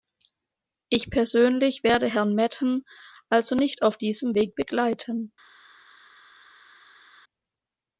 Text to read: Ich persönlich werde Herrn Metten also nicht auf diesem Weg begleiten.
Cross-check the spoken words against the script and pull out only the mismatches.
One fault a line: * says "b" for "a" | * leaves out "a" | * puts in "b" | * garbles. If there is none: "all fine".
all fine